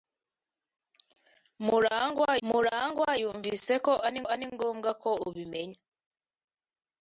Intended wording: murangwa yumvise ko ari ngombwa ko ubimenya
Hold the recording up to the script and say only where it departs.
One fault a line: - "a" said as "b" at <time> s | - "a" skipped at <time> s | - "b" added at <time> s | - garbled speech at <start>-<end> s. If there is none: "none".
- "murangwa" added at 2.5 s
- "ari" added at 4.3 s